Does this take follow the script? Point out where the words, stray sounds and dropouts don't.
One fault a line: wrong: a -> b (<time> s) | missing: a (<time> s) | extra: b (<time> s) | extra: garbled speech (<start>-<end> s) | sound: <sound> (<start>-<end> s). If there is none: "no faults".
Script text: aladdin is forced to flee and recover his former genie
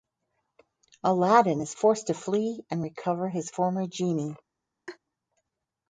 sound: laugh (4.9-5.0 s)